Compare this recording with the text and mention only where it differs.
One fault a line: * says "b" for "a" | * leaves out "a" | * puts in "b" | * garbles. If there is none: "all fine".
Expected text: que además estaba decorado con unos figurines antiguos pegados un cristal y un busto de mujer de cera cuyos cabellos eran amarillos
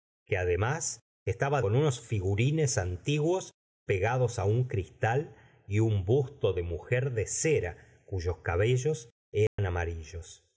* leaves out "decorado"